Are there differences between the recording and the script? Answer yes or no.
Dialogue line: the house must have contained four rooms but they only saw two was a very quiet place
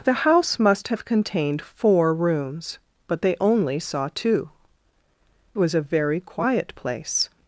no